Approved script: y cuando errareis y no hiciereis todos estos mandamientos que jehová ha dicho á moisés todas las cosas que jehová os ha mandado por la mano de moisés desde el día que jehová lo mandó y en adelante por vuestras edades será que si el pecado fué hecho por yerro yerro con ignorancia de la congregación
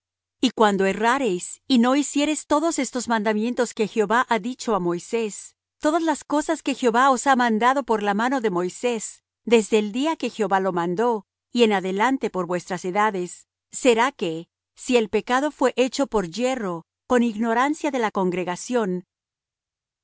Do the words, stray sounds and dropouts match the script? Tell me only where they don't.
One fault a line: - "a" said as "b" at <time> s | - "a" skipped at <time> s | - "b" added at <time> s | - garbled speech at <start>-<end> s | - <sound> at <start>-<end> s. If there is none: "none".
- "yerro" skipped at 16.8 s